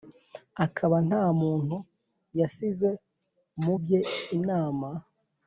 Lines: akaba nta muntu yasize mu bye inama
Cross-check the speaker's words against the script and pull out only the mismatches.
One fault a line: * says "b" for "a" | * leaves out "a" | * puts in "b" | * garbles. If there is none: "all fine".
all fine